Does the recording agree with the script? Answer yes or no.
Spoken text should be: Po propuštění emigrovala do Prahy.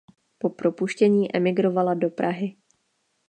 yes